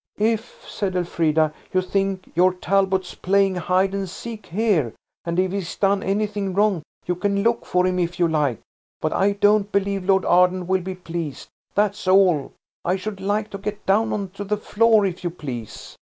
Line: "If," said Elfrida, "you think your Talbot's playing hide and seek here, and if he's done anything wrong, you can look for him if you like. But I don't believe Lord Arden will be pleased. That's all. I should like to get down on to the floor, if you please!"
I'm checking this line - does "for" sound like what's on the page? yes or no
yes